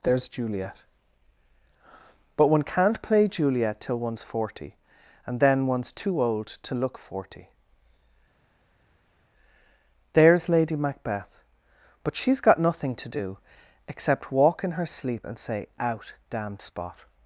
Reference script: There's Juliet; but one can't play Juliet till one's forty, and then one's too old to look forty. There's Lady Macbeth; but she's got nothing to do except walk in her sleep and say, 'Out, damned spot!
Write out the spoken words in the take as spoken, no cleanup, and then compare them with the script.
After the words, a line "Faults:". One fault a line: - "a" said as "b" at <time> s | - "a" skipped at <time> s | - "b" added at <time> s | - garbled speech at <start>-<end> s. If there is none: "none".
There's Juliet; but one can't play Juliet till one's forty, and then one's too old to look forty. There's Lady Macbeth; but she's got nothing to do except walk in her sleep and say, 'Out, damned spot!
Faults:
none